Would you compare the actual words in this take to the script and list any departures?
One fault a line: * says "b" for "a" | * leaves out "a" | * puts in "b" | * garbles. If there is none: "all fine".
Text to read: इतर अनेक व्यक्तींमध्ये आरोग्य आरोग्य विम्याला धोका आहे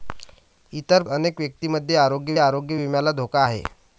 all fine